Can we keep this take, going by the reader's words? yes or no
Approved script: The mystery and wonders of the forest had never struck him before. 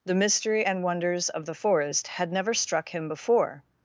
yes